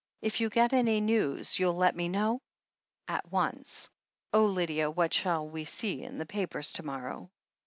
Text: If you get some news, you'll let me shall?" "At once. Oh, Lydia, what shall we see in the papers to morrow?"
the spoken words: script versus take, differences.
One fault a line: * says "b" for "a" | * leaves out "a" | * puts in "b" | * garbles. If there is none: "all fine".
* says "any" for "some"
* says "know" for "shall"